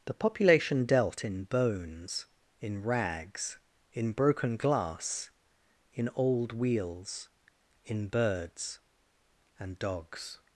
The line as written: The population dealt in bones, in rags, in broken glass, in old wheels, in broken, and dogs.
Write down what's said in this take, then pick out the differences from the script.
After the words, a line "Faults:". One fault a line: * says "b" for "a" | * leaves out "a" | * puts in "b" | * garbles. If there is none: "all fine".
The population dealt in bones, in rags, in broken glass, in old wheels, in birds, and dogs.
Faults:
* says "birds" for "broken"